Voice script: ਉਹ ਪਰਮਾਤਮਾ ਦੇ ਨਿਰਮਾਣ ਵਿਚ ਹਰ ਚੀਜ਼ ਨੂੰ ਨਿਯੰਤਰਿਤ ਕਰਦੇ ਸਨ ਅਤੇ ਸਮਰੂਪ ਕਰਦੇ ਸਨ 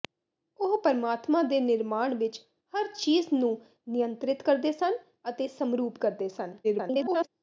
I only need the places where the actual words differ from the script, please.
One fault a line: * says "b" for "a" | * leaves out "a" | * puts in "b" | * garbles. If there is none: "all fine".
* garbles